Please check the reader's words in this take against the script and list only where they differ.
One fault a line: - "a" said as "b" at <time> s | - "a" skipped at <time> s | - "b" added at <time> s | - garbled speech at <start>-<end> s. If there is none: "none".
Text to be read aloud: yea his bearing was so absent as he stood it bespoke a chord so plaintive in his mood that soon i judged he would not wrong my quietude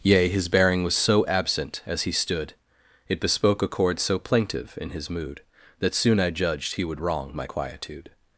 - "not" skipped at 7.0 s